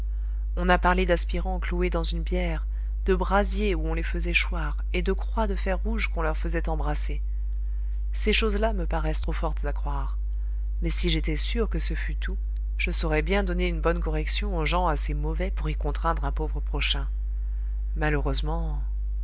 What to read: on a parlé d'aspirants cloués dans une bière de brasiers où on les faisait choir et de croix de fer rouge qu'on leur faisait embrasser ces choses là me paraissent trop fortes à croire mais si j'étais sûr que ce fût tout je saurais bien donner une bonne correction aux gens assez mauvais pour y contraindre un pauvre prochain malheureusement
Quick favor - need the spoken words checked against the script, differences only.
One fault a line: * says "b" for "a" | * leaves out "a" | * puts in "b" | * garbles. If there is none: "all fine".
all fine